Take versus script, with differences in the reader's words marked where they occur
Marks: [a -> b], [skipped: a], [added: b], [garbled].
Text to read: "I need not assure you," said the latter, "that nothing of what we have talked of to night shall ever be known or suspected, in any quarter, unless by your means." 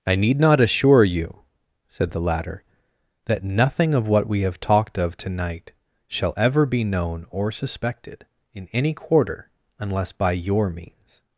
"I need not assure you," said the latter, "that nothing of what we have talked of to night shall ever be known or suspected, in any quarter, unless by your means."